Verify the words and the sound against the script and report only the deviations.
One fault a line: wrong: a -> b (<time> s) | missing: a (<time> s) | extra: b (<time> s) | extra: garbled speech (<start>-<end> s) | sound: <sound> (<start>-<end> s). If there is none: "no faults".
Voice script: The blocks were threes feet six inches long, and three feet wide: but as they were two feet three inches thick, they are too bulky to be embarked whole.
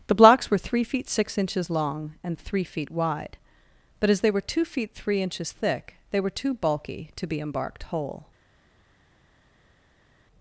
wrong: threes -> three (0.6 s)
wrong: are -> were (6.2 s)